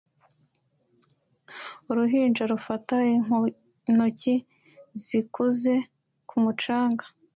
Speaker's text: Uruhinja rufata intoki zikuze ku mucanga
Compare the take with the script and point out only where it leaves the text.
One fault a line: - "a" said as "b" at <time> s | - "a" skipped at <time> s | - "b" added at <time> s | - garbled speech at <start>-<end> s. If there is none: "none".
none